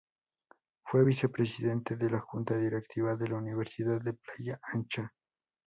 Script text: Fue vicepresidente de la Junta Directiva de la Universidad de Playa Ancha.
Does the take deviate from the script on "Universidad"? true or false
false